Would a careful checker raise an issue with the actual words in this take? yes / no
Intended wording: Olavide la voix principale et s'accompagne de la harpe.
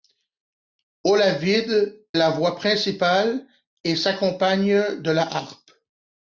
no